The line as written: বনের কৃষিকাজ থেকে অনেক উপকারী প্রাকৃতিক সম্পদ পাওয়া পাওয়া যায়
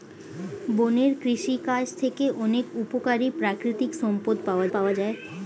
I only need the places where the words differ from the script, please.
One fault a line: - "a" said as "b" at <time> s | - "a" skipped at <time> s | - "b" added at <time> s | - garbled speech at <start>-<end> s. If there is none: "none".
none